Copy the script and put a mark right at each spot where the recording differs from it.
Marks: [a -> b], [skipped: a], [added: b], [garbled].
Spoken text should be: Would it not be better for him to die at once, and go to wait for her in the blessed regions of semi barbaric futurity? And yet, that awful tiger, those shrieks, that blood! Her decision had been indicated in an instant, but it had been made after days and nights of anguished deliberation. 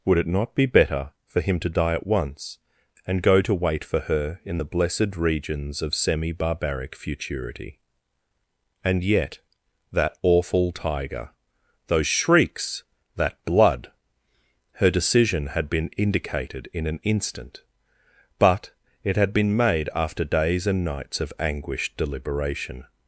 Would it not be better for him to die at once, and go to wait for her in the blessed regions of semi barbaric futurity? And yet, that awful tiger, those shrieks, that blood! Her decision had been indicated in an instant, but it had been made after days and nights of anguished deliberation.